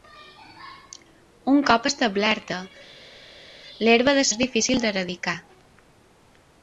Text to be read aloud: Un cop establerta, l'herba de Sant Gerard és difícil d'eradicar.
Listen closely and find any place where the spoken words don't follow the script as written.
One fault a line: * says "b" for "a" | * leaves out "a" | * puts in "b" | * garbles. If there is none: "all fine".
* leaves out "Sant Gerard"